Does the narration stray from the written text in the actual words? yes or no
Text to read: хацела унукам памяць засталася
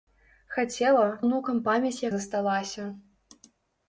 no